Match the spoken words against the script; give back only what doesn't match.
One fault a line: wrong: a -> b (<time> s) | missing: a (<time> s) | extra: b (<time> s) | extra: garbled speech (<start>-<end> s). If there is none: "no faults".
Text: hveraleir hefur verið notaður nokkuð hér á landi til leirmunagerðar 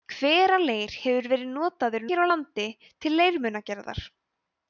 missing: nokkuð (2.1 s)